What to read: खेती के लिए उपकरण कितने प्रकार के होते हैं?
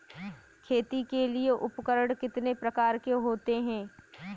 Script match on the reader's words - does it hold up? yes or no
yes